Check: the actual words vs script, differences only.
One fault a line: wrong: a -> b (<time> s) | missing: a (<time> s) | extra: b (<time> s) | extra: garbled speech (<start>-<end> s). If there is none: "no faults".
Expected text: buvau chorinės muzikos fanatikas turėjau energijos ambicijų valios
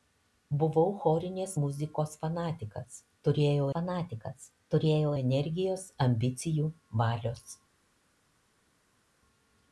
extra: fanatikas turėjau (3.7 s)